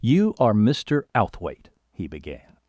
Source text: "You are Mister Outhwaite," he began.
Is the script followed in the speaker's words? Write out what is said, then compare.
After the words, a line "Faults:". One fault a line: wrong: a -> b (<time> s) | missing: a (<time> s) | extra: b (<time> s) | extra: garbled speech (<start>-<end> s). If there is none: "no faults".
"You are Mister Outhwaite," he began.
Faults:
no faults